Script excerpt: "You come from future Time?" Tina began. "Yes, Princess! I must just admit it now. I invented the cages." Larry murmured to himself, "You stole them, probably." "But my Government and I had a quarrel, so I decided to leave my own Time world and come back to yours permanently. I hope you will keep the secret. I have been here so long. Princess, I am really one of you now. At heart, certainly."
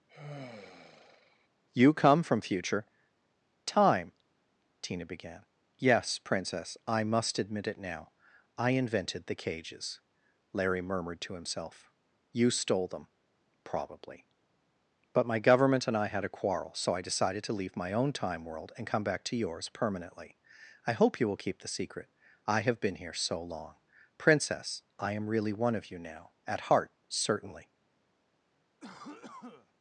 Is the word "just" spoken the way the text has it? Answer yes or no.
no